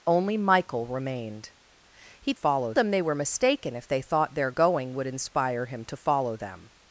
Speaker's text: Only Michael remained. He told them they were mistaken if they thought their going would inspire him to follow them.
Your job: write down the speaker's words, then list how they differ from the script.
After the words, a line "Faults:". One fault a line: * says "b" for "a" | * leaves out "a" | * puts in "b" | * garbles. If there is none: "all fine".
Only Michael remained. He follow them they were mistaken if they thought their going would inspire him to follow them.
Faults:
* says "follow" for "told"